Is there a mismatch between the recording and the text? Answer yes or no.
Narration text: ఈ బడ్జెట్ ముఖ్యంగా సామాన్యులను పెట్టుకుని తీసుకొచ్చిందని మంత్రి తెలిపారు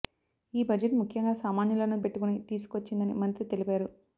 no